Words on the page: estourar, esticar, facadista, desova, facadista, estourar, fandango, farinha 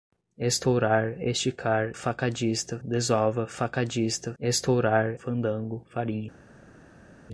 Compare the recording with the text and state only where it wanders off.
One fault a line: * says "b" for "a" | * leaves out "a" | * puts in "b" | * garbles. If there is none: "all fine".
all fine